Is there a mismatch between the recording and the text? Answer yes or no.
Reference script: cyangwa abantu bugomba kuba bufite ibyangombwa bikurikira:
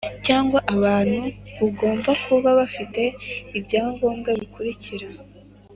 no